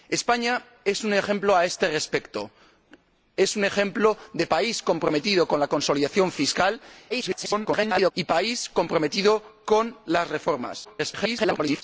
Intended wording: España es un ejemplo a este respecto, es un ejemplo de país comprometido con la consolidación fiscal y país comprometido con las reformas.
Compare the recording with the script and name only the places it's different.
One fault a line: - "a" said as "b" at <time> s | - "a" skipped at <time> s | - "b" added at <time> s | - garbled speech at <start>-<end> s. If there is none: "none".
- garbled speech at 7.1-8.1 s
- garbled speech at 10.8-11.8 s